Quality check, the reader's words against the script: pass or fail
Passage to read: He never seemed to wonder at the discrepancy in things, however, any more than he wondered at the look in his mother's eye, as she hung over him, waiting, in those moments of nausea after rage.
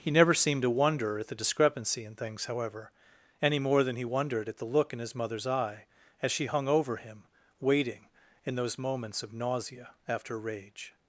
pass